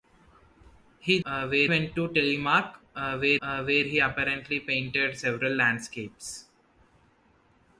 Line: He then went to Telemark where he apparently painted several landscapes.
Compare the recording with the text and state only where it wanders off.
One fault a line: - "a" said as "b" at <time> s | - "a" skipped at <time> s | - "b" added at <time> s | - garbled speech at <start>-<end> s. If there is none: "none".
- "then" said as "where" at 1.2 s
- "where" added at 3.4 s